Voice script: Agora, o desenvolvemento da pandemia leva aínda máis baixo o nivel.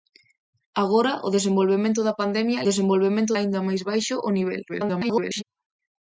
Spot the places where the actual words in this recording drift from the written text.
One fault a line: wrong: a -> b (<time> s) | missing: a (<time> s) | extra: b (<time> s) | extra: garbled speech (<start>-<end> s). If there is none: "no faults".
wrong: leva -> desenvolvemento (2.7 s)
extra: garbled speech (4.7-5.4 s)